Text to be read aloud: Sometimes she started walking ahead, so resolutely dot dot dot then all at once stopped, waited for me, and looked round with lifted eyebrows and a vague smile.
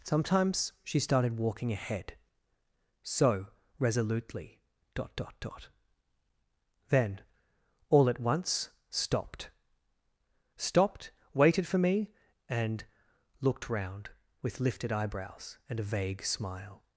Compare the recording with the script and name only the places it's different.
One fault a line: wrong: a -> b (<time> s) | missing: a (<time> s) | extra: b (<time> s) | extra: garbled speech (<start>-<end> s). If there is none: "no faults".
extra: stopped (10.6 s)